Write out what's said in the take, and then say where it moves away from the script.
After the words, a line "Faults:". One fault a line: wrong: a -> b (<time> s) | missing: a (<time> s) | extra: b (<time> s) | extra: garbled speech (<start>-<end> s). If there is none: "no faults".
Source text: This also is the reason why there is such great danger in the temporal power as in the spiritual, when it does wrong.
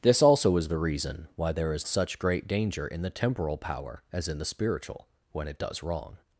This also is the reason why there is such great danger in the temporal power as in the spiritual, when it does wrong.
Faults:
no faults